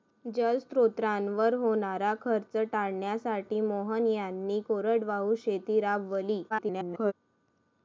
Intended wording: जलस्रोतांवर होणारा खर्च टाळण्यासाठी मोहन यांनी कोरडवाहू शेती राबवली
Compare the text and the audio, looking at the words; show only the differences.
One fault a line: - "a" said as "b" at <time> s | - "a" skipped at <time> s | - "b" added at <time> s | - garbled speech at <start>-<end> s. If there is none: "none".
- garbled speech at 6.5-7.1 s